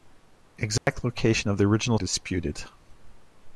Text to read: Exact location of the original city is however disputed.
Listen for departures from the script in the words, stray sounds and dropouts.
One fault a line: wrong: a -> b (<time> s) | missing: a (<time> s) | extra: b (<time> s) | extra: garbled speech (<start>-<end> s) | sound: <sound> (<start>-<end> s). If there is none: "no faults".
sound: dropout (0.8-0.9 s)
missing: city is however (2.0 s)